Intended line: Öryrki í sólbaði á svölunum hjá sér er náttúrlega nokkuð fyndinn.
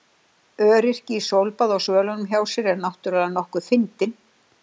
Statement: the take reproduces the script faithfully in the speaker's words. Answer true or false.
true